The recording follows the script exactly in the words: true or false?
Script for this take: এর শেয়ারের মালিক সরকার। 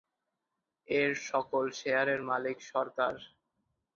false